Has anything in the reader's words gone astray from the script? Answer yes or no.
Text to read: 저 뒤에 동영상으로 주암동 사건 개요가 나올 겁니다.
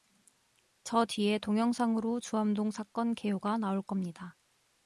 no